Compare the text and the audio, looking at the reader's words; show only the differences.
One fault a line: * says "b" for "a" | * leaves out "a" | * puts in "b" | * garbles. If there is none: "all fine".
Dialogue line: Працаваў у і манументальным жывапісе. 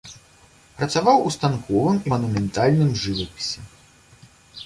* puts in "станковым"